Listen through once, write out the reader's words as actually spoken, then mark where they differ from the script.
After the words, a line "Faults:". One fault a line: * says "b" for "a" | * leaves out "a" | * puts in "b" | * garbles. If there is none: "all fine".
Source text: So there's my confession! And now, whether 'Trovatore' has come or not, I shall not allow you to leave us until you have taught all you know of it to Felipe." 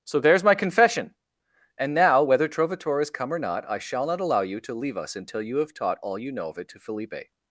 So there's my confession! And now, whether 'Trovatore' has come or not, I shall not allow you to leave us until you have taught all you know of it to Felipe."
Faults:
all fine